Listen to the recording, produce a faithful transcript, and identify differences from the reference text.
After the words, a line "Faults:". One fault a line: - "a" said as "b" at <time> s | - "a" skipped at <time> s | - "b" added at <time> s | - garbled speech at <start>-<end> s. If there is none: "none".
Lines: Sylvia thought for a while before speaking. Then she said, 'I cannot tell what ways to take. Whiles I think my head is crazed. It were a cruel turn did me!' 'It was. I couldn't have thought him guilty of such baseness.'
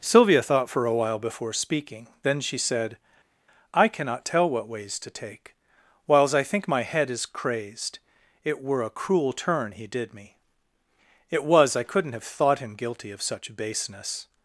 Sylvia thought for a while before speaking. Then she said, 'I cannot tell what ways to take. Whiles I think my head is crazed. It were a cruel turn he did me!' 'It was. I couldn't have thought him guilty of such baseness.'
Faults:
- "he" added at 9.7 s